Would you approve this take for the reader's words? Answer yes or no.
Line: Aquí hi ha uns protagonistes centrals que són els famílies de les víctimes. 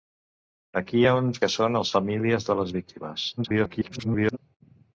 no